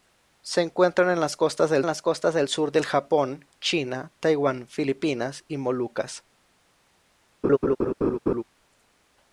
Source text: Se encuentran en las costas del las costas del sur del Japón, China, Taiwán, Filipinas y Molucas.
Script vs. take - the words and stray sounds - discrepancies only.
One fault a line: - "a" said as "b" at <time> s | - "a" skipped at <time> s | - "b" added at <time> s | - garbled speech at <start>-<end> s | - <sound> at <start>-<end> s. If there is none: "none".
- laugh at 7.4-8.4 s